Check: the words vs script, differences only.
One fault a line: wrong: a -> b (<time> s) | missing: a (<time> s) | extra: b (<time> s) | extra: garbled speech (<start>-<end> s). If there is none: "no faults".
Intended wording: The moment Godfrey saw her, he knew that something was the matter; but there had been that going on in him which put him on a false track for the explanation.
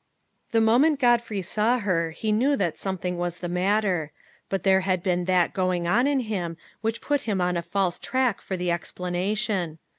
no faults